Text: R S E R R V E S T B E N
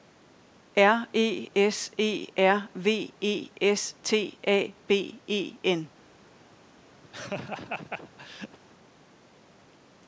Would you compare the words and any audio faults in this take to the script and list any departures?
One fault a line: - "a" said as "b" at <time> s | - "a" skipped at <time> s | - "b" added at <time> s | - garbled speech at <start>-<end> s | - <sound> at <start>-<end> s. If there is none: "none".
- "E" added at 1.1 s
- "R" skipped at 2.7 s
- "A" added at 4.5 s
- laugh at 7.0-8.6 s